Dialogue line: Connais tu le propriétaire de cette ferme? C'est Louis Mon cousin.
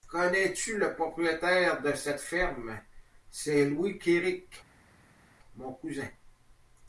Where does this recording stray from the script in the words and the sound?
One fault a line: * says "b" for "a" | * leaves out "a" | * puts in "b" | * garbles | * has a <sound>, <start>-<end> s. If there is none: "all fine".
* puts in "Kéric"